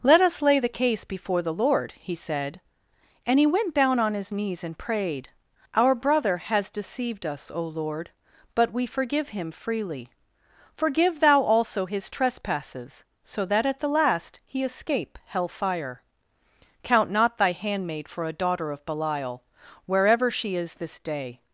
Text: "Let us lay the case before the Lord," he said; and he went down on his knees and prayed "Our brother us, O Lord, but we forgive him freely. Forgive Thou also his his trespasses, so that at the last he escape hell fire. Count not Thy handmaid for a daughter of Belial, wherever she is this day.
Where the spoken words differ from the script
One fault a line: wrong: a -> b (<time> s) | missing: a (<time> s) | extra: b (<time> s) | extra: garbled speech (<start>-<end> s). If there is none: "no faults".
extra: has deceived (6.4 s)
missing: his (12.1 s)